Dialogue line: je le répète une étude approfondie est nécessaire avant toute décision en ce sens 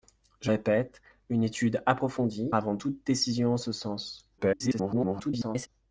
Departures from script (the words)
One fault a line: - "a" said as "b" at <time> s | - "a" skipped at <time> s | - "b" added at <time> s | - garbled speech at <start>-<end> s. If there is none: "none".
- "le" skipped at 0.5 s
- "est nécessaire" skipped at 2.5 s
- garbled speech at 4.4-5.7 s